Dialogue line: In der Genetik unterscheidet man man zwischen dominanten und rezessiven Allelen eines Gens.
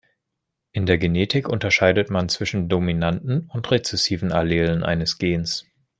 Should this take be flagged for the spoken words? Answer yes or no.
yes